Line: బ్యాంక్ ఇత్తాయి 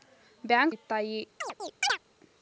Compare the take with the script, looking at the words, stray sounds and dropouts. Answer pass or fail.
fail